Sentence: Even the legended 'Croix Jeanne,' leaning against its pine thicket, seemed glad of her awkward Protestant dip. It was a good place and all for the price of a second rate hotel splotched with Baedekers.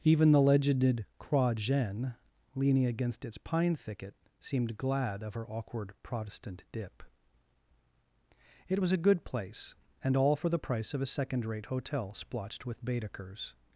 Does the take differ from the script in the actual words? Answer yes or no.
no